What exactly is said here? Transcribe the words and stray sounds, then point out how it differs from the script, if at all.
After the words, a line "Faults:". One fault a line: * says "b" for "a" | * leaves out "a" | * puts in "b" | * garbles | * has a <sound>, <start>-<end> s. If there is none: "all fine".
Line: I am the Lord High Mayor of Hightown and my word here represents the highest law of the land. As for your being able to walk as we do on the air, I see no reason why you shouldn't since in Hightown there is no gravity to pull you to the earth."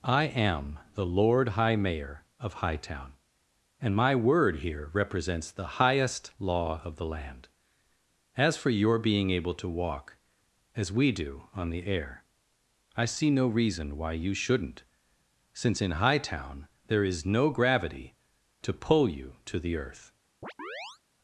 I am the Lord High Mayor of Hightown and my word here represents the highest law of the land. As for your being able to walk as we do on the air, I see no reason why you shouldn't since in Hightown there is no gravity to pull you to the earth."
Faults:
* has a chirp, 20.4-21.0 s